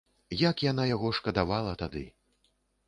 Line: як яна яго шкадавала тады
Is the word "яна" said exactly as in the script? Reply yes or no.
yes